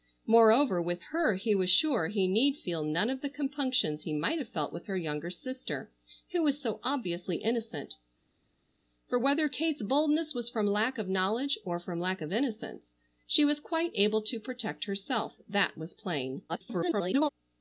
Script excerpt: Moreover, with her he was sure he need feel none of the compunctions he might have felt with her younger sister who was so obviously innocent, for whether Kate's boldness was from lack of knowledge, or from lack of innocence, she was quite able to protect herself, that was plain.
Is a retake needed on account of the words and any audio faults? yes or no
yes